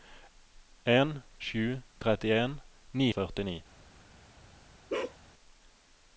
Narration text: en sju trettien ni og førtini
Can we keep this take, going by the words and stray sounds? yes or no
no